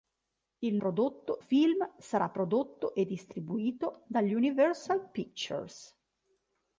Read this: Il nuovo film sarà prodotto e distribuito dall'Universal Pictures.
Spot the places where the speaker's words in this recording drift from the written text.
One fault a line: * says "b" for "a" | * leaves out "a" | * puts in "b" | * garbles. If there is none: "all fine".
* says "prodotto" for "nuovo"